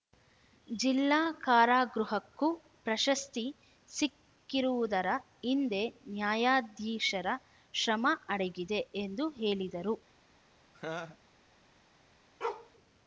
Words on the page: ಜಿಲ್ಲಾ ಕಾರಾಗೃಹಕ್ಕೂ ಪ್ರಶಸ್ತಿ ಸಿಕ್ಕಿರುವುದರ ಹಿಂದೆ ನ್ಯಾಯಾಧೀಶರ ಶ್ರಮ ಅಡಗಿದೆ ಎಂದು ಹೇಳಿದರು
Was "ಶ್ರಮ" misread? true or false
false